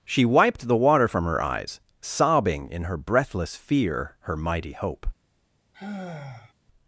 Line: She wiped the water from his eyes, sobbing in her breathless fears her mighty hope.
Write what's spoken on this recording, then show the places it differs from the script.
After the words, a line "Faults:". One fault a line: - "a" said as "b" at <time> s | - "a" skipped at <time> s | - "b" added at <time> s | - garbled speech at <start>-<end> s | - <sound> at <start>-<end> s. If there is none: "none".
She wiped the water from her eyes, sobbing in her breathless fear her mighty hope.
Faults:
- "his" said as "her" at 1.2 s
- "fears" said as "fear" at 3.5 s
- sigh at 5.7-6.5 s